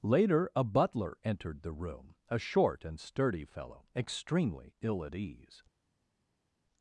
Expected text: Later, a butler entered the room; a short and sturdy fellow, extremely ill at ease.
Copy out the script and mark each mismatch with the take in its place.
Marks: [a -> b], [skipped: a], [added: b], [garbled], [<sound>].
Later, a butler entered the room; a short and sturdy fellow, extremely ill at ease.